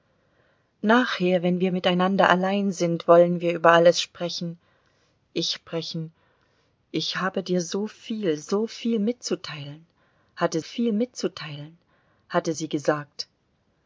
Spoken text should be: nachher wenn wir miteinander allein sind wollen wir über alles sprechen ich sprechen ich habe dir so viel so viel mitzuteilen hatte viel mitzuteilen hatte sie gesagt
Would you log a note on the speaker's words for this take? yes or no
no